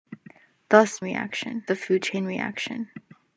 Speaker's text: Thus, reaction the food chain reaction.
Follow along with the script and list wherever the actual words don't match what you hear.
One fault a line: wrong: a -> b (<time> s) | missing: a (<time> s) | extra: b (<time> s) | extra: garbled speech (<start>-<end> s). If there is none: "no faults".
no faults